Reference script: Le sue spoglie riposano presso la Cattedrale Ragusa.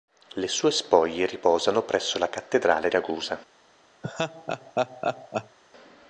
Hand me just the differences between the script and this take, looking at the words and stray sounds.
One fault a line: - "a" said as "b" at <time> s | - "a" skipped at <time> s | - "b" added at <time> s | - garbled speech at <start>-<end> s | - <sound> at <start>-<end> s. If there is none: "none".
- laugh at 4.0-5.6 s